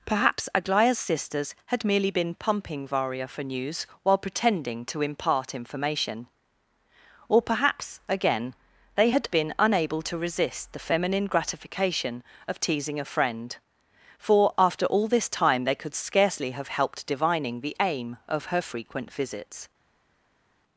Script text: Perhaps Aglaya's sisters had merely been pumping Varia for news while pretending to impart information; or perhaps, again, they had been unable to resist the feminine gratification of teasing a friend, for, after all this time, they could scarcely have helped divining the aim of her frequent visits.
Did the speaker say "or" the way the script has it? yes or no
yes